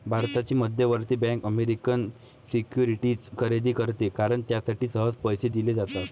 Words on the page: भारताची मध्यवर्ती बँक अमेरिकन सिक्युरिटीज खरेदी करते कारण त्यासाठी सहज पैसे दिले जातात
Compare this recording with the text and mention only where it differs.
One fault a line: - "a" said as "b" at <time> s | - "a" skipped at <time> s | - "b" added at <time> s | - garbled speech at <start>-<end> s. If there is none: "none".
none